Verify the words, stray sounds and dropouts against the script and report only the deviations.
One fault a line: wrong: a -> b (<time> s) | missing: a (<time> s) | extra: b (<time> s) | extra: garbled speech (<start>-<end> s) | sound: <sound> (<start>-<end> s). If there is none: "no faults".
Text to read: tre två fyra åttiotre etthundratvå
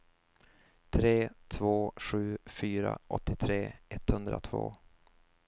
extra: sju (1.9 s)